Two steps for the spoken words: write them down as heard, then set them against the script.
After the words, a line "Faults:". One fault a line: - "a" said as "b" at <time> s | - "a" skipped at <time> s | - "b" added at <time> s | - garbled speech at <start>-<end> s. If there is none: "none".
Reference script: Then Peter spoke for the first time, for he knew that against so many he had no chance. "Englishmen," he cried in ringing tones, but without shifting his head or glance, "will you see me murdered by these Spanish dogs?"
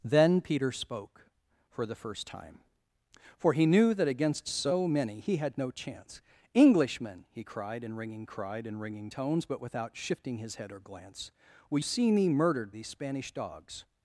Then Peter spoke for the first time, for he knew that against so many he had no chance. "Englishmen," he cried in ringing cried in ringing tones, but without shifting his head or glance, "will see me murdered these Spanish dogs?"
Faults:
- "cried in ringing" added at 8.2 s
- "you" skipped at 11.8 s
- "by" skipped at 12.7 s